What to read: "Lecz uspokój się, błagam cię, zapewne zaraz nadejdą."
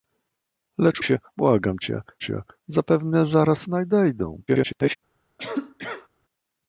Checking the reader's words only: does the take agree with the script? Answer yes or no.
no